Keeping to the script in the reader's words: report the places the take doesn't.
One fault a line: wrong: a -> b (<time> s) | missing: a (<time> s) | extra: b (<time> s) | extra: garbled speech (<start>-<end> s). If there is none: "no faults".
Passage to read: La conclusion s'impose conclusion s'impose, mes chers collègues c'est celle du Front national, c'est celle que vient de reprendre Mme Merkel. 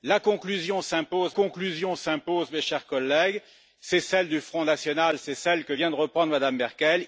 no faults